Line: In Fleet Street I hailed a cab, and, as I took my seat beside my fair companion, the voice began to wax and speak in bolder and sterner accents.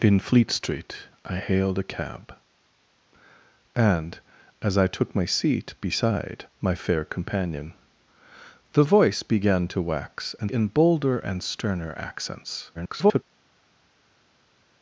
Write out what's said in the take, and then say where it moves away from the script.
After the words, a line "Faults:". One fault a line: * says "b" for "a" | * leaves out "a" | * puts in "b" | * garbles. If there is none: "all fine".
In Fleet Street I hailed a cab, and, as I took my seat beside my fair companion, the voice began to wax and in bolder and sterner accents. [garbled]
Faults:
* leaves out "speak"
* garbles